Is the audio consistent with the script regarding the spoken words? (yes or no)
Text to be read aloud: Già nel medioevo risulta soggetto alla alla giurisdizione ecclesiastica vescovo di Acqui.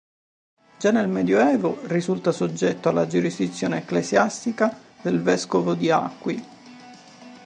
no